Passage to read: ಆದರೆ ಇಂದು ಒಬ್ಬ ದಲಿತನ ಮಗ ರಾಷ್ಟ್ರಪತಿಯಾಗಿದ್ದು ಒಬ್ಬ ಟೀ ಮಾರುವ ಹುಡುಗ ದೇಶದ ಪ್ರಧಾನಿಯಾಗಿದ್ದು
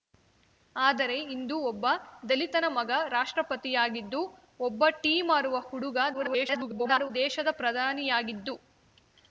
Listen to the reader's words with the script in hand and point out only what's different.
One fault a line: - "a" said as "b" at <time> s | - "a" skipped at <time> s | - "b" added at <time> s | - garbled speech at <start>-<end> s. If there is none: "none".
- garbled speech at 6.1-7.1 s